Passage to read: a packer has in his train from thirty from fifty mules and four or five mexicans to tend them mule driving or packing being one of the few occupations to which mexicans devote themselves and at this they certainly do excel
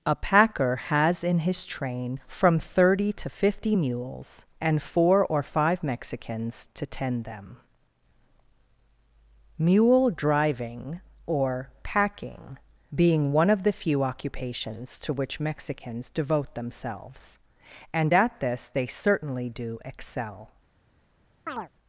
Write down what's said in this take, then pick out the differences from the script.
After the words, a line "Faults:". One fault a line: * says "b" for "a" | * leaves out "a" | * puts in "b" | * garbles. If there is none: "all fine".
a packer has in his train from thirty to fifty mules and four or five mexicans to tend them mule driving or packing being one of the few occupations to which mexicans devote themselves and at this they certainly do excel
Faults:
* says "to" for "from"